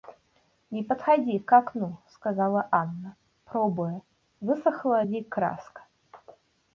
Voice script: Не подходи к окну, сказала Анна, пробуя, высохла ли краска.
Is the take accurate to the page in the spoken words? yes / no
yes